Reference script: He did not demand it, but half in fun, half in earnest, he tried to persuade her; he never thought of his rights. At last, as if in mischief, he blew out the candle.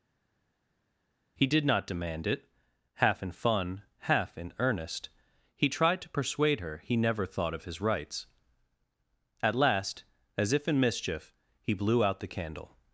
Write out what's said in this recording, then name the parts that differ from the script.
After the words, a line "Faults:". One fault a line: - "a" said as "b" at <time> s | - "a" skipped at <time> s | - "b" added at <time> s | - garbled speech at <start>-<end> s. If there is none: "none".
He did not demand it, half in fun, half in earnest, he tried to persuade her; he never thought of his rights. At last, as if in mischief, he blew out the candle.
Faults:
- "but" skipped at 2.4 s